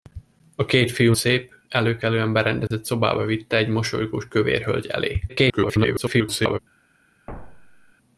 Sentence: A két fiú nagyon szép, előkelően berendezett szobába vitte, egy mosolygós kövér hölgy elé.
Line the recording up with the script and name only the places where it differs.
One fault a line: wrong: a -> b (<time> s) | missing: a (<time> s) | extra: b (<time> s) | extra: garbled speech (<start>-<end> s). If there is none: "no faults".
missing: nagyon (1.1 s)
extra: garbled speech (5.3-6.6 s)